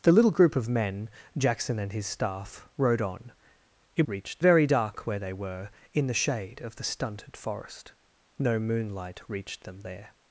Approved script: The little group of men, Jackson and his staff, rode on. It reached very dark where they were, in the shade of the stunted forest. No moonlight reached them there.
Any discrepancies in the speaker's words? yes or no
no